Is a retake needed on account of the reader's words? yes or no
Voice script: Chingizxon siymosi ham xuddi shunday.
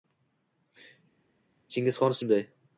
yes